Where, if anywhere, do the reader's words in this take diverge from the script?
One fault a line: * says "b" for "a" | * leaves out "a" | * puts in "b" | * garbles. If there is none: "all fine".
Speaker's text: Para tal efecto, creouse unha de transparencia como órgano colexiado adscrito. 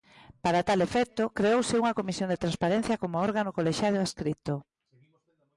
* puts in "comisión"